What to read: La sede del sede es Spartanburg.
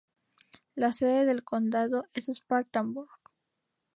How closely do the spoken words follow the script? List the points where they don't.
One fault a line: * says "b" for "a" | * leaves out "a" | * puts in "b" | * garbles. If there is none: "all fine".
* says "condado" for "sede"